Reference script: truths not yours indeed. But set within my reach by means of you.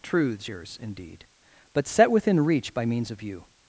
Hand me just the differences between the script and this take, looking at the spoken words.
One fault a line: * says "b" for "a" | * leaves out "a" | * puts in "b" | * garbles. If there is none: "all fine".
* leaves out "not"
* leaves out "my"